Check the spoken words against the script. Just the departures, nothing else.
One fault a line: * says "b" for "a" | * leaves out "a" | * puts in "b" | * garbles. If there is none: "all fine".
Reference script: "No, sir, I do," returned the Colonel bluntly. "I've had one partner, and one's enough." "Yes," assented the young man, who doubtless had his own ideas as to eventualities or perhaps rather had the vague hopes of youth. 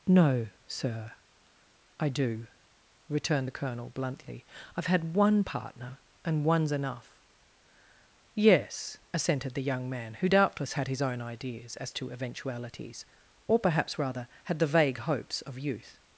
all fine